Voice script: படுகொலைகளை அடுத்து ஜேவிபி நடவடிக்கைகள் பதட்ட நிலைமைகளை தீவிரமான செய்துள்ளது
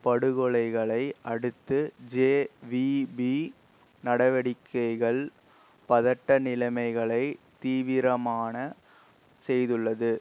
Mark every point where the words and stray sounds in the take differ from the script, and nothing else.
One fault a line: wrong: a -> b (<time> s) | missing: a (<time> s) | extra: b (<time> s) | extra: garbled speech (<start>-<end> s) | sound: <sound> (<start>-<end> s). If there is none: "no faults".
no faults